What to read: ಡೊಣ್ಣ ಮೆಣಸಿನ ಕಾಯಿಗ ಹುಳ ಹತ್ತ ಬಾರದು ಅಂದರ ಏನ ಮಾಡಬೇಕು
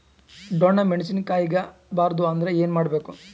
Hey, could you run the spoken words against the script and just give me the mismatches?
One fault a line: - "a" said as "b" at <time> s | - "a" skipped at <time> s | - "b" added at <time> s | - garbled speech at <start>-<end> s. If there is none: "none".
- "ಹುಳ ಹತ್ತ" skipped at 1.6 s